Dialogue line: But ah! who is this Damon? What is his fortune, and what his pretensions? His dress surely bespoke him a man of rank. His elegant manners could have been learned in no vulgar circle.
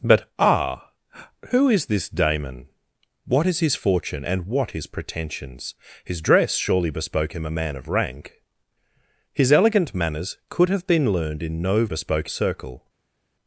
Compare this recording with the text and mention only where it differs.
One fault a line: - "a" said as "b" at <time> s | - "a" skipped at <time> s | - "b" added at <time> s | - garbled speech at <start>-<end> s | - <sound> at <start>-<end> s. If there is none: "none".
- "vulgar" said as "bespoke" at 11.8 s